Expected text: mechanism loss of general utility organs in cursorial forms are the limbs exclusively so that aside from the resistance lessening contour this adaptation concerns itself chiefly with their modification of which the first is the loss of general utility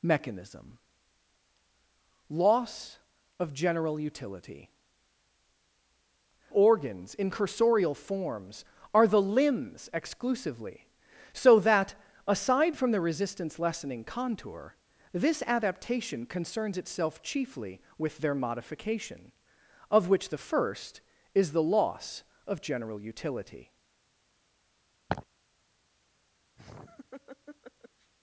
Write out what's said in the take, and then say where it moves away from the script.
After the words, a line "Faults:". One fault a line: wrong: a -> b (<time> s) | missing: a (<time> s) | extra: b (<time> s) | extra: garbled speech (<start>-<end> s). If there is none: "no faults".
mechanism loss of general utility organs in cursorial forms are the limbs exclusively so that aside from the resistance lessening contour this adaptation concerns itself chiefly with their modification of which the first is the loss of general utility
Faults:
no faults